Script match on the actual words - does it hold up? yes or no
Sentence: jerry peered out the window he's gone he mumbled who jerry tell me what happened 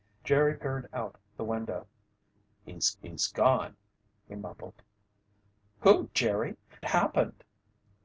no